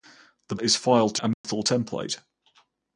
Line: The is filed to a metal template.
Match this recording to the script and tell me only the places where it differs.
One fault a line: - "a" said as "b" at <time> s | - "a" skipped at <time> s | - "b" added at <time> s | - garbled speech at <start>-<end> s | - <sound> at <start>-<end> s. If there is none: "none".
- dropout at 1.3-1.4 s